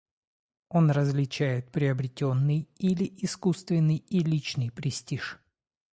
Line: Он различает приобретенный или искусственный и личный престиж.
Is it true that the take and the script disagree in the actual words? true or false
false